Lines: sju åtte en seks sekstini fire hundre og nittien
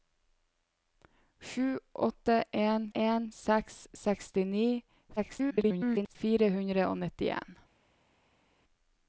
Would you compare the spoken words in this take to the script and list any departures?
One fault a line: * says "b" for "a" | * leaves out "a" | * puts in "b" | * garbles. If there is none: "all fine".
* puts in "en"
* garbles